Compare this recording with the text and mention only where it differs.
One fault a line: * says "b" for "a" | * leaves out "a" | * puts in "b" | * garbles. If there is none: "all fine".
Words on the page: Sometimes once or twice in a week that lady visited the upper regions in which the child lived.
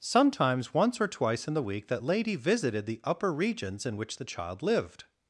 * says "the" for "a"